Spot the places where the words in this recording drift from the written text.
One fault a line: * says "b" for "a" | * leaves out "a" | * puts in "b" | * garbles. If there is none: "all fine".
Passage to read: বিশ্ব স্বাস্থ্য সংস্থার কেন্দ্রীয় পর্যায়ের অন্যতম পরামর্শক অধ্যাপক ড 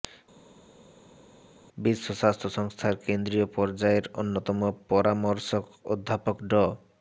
all fine